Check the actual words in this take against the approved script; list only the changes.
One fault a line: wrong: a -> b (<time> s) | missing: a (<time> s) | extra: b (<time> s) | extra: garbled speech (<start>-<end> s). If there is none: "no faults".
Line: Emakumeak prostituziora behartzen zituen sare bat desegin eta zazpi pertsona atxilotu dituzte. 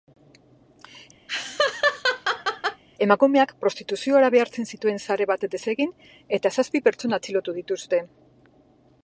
no faults